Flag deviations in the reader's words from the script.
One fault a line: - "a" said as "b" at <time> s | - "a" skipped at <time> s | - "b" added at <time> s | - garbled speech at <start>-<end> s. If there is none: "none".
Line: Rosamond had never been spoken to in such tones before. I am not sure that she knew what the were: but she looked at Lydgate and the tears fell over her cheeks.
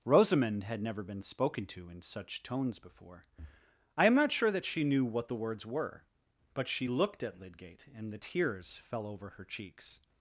- "words" added at 5.3 s